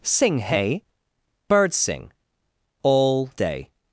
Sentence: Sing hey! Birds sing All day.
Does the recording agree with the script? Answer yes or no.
yes